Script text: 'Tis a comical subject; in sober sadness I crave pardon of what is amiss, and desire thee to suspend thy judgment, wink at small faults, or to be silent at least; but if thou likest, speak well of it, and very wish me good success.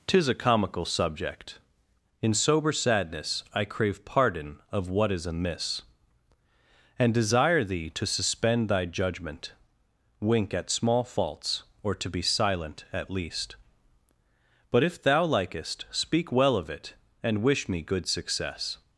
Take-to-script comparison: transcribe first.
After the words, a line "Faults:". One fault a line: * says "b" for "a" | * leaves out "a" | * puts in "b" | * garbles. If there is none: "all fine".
'Tis a comical subject; in sober sadness I crave pardon of what is amiss, and desire thee to suspend thy judgment, wink at small faults, or to be silent at least; but if thou likest, speak well of it, and wish me good success.
Faults:
* leaves out "very"